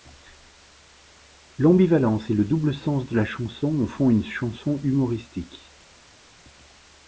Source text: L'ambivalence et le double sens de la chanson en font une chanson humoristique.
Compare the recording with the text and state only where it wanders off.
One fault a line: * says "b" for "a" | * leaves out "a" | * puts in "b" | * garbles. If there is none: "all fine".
all fine